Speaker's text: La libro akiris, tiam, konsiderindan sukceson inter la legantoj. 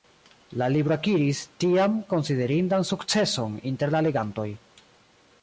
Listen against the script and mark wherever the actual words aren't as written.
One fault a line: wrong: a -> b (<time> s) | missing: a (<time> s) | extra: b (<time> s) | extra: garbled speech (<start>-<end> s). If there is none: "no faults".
no faults